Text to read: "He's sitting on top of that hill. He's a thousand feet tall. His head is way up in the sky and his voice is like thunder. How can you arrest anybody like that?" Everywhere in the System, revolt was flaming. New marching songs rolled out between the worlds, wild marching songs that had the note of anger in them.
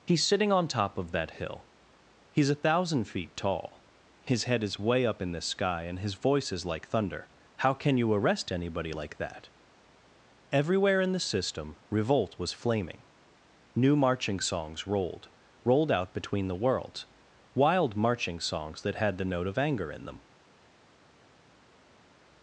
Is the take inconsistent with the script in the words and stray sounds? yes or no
yes